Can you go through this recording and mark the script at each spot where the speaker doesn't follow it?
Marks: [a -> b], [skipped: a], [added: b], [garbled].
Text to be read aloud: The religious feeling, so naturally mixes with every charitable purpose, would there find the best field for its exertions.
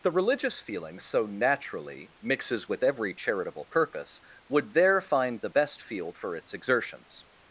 The religious feeling, so naturally mixes with every charitable purpose, would there find the best field for its exertions.